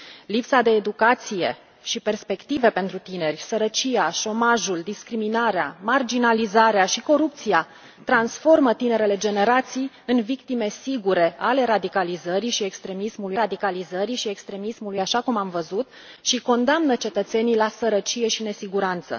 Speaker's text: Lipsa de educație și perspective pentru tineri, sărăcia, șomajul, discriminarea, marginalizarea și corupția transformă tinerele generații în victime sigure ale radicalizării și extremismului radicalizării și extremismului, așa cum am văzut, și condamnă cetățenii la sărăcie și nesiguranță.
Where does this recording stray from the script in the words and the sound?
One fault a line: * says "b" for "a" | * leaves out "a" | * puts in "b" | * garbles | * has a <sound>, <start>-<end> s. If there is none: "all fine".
all fine